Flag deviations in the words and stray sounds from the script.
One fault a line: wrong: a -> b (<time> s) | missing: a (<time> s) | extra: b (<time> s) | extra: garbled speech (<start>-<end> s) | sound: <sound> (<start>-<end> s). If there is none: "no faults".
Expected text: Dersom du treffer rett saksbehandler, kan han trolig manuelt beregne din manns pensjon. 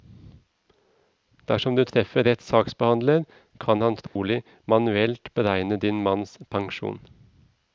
sound: dropout (4.1-4.2 s)